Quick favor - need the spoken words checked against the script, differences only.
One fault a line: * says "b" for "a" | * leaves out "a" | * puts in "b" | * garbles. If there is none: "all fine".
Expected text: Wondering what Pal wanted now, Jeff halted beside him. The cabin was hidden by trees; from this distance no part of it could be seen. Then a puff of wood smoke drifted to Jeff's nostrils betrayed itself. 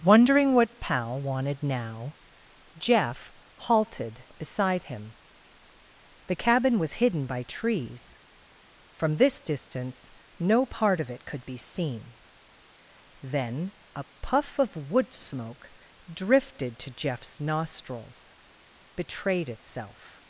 all fine